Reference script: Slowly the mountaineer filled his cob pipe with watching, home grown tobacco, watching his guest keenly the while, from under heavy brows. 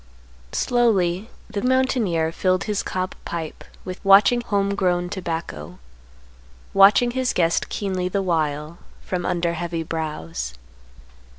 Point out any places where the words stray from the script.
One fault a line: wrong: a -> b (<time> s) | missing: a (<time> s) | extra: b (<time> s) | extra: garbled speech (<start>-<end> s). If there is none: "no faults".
no faults